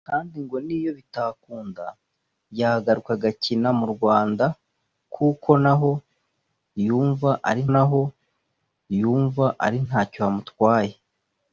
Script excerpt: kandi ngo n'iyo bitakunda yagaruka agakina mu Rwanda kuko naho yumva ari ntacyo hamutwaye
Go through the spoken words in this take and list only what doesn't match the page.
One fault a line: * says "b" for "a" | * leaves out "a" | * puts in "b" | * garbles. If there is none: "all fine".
* puts in "naho yumva ari"